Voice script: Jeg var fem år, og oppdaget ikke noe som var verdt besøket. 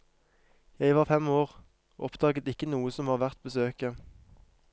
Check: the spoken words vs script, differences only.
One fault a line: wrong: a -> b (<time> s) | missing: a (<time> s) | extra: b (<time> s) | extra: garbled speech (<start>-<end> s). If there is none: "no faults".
no faults